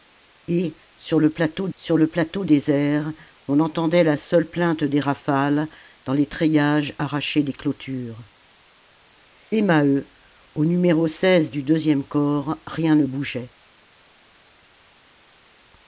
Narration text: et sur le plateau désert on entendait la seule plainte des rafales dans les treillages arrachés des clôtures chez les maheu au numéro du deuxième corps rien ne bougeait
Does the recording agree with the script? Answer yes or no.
no